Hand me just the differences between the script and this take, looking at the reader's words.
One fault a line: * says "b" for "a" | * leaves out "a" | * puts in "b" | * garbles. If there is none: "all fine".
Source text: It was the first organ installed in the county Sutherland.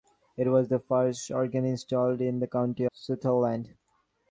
all fine